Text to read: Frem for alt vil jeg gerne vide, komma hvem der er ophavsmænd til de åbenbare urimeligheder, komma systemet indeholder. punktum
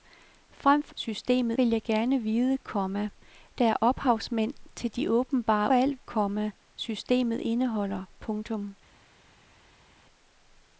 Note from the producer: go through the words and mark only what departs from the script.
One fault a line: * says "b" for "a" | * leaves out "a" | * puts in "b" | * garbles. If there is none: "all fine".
* says "systemet" for "alt"
* leaves out "hvem"
* says "alt" for "urimeligheder"